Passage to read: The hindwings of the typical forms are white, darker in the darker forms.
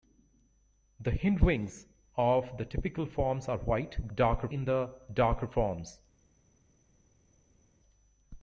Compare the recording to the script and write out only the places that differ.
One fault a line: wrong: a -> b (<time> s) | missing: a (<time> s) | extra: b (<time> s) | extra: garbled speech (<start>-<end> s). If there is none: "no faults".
no faults